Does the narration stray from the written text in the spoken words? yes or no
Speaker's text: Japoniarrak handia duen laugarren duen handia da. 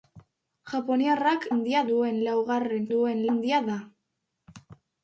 no